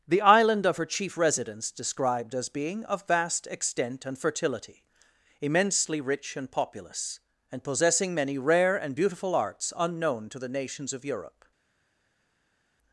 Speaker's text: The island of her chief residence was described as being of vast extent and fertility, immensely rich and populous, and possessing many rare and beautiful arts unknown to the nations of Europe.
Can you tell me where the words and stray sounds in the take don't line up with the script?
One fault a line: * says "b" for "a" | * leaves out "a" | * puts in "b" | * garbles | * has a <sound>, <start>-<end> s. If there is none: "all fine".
* leaves out "was"